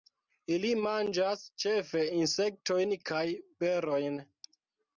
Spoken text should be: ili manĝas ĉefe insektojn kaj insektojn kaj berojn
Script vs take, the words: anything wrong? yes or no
yes